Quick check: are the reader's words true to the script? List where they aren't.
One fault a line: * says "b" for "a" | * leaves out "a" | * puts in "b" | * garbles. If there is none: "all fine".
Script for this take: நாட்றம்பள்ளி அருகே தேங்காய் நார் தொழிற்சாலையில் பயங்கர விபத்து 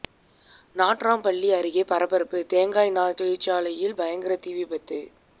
* puts in "பரபரப்பு"
* puts in "தீ"